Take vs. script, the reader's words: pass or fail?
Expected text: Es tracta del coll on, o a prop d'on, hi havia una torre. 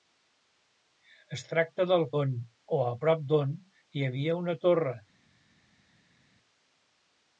fail